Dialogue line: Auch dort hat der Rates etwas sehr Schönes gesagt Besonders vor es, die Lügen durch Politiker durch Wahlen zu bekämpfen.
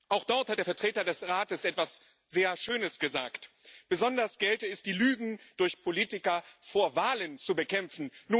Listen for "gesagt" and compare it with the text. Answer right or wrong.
right